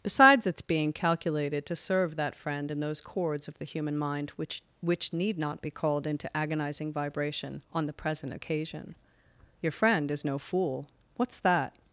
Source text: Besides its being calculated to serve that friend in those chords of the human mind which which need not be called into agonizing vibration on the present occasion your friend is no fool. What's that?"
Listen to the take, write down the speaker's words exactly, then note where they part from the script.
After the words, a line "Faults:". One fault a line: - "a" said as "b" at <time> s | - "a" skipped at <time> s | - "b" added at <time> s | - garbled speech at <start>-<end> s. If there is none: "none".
Besides its being calculated to serve that friend in those chords of the human mind which which need not be called into agonizing vibration on the present occasion your friend is no fool. What's that?"
Faults:
none